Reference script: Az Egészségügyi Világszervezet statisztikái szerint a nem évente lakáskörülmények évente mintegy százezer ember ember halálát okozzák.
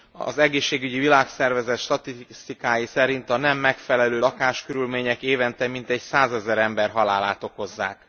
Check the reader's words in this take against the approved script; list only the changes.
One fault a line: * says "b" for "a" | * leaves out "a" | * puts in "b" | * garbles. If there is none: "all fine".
* says "megfelelő" for "évente"
* leaves out "ember"